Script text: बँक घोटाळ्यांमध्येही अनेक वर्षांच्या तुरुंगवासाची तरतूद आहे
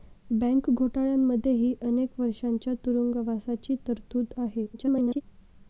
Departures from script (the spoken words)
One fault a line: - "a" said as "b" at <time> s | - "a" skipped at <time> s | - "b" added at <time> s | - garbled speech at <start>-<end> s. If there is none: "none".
- garbled speech at 4.7-5.2 s